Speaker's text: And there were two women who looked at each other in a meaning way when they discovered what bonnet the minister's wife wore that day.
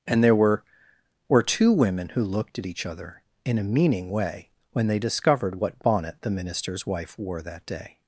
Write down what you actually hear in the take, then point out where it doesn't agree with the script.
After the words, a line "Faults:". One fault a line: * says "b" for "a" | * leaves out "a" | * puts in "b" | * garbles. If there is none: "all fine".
And there were were two women who looked at each other in a meaning way when they discovered what bonnet the minister's wife wore that day.
Faults:
* puts in "were"